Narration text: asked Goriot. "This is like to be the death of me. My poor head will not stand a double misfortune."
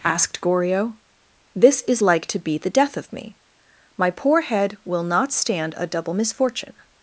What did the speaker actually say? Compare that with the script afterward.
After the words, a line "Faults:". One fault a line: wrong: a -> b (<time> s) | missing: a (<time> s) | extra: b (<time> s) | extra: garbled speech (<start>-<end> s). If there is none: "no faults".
asked Goriot. "This is like to be the death of me. My poor head will not stand a double misfortune."
Faults:
no faults